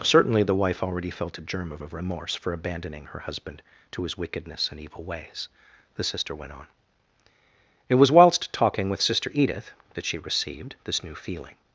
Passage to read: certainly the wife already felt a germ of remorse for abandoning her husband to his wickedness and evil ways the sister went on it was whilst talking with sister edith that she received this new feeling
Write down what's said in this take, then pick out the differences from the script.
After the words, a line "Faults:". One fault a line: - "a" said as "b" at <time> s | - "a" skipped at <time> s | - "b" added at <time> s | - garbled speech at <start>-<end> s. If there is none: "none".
certainly the wife already felt a germ of of remorse for abandoning her husband to his wickedness and evil ways the sister went on it was whilst talking with sister edith that she received this new feeling
Faults:
- "of" added at 1.8 s